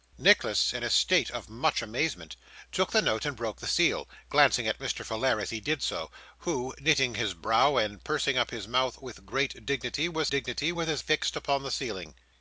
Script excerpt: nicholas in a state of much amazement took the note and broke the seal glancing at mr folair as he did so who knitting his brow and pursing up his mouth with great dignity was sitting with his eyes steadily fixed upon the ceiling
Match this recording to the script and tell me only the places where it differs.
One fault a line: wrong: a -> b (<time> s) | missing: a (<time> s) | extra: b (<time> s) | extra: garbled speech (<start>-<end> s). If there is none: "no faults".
wrong: sitting -> dignity (10.3 s)
missing: eyes steadily (11.0 s)